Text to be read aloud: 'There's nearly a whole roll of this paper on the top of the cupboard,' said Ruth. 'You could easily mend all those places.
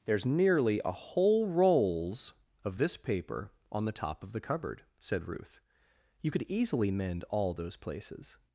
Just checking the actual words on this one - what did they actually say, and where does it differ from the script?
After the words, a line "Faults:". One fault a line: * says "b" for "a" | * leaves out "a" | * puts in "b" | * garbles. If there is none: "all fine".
'There's nearly a whole rolls of this paper on the top of the cupboard,' said Ruth. 'You could easily mend all those places.
Faults:
* says "rolls" for "roll"